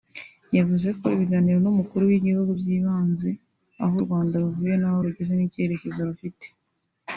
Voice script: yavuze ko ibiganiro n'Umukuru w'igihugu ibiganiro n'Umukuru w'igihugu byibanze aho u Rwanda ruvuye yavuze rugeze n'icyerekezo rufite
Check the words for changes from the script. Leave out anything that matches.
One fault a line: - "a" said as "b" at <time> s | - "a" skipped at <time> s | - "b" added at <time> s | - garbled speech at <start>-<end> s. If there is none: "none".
- "ibiganiro n'Umukuru w'igihugu" skipped at 2.5 s
- "yavuze" said as "n'aho" at 4.8 s